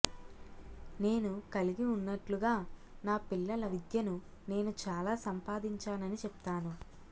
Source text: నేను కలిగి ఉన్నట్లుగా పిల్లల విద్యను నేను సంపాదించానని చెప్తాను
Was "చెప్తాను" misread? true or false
false